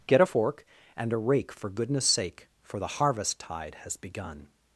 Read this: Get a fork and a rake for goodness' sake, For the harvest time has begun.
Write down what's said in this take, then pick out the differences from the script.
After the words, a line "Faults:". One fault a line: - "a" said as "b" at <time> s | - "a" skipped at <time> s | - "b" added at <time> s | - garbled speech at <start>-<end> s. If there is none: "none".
Get a fork and a rake for goodness' sake, For the harvest tide has begun.
Faults:
- "time" said as "tide" at 3.4 s